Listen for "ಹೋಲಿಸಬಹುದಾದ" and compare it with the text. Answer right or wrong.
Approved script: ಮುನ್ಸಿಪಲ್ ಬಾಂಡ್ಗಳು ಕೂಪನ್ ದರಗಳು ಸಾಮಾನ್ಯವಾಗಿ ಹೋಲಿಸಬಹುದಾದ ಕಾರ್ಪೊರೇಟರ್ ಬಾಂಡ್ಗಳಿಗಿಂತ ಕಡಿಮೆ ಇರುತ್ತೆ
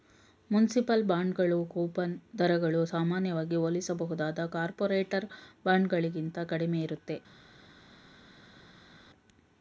right